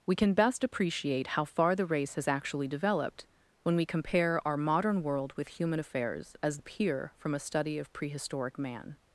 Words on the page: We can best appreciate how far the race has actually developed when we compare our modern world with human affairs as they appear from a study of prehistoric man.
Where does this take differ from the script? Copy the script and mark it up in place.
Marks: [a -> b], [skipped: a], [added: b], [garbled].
We can best appreciate how far the race has actually developed when we compare our modern world with human affairs as [skipped: they] appear from a study of prehistoric man.